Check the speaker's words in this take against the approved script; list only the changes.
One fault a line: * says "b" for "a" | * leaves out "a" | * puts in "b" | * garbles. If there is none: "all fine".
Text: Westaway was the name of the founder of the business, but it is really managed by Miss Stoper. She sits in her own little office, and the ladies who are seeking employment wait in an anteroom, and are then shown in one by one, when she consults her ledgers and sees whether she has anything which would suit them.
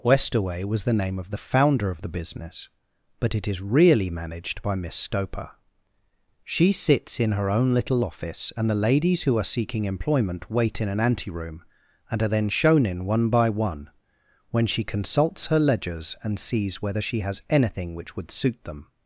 all fine